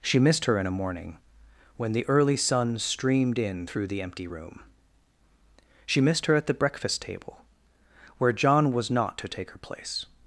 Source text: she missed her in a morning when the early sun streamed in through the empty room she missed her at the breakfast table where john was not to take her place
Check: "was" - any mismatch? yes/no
no